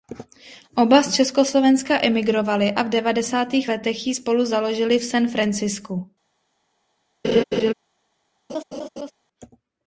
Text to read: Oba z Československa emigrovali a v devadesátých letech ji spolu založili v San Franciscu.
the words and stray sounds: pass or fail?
fail